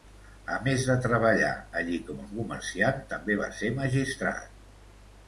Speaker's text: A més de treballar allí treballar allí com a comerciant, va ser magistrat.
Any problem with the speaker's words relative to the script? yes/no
yes